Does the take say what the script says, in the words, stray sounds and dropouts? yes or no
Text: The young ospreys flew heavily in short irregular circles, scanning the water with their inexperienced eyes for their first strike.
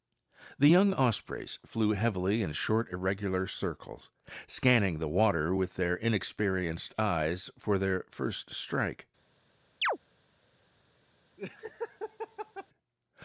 no